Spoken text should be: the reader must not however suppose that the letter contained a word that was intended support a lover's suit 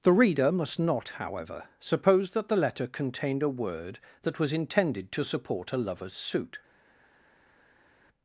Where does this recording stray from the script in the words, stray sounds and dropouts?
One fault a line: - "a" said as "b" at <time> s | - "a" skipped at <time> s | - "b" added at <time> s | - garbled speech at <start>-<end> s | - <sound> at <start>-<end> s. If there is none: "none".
- "to" added at 5.1 s